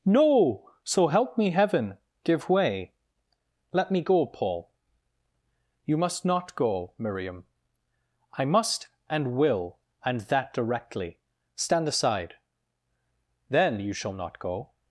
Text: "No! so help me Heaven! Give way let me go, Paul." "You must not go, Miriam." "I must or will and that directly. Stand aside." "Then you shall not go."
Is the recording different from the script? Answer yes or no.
yes